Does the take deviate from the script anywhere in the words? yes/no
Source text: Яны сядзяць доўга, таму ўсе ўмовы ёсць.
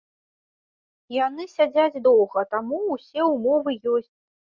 no